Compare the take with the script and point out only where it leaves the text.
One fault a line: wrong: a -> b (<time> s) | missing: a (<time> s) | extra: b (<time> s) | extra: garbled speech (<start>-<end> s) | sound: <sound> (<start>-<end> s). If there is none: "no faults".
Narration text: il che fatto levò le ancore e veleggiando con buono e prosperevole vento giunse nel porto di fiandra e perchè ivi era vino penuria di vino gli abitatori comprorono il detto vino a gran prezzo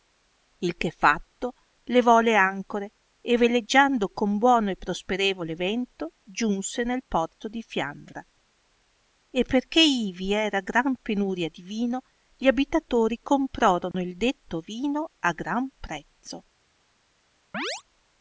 wrong: vino -> gran (10.6 s)
sound: dropout (13.9-13.9 s)
sound: chirp (17.5-17.8 s)